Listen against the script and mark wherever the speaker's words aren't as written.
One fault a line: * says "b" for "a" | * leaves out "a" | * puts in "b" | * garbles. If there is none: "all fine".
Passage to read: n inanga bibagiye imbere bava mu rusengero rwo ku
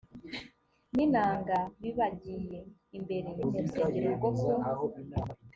* leaves out "bava"